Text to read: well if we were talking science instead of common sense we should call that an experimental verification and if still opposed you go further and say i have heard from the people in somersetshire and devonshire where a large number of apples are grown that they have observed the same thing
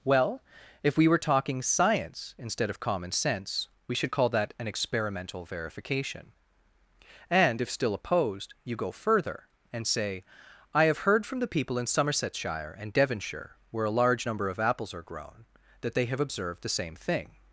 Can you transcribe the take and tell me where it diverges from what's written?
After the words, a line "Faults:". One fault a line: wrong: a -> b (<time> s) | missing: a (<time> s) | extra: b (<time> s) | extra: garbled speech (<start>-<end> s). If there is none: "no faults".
well if we were talking science instead of common sense we should call that an experimental verification and if still opposed you go further and say i have heard from the people in somersetshire and devonshire where a large number of apples are grown that they have observed the same thing
Faults:
no faults